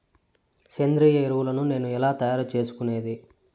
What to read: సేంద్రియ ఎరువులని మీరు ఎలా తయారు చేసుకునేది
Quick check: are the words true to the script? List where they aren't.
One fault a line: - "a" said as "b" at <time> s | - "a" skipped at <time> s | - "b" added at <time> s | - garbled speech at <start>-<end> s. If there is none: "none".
- "మీరు" said as "నేను" at 1.7 s